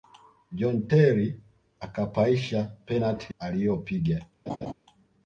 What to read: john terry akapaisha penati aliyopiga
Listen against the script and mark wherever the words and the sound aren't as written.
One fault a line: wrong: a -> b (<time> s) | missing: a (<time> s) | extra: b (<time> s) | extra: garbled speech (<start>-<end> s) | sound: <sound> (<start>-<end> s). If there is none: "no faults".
sound: laugh (4.5-4.7 s)